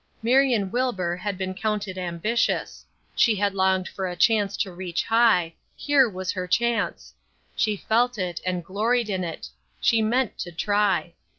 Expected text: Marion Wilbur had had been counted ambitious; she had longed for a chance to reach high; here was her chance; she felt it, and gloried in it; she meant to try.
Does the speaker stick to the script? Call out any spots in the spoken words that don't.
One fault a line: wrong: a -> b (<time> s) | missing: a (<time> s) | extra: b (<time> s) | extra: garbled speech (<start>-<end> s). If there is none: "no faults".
missing: had (1.4 s)